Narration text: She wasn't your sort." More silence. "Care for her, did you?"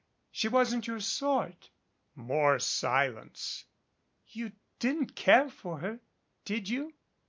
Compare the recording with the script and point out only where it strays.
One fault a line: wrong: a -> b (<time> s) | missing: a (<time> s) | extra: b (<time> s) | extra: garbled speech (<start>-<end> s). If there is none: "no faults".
extra: You didn't (4.2 s)